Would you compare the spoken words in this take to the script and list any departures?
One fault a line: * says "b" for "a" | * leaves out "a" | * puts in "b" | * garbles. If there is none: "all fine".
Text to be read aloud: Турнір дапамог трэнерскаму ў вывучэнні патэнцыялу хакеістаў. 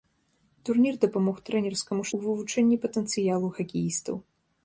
all fine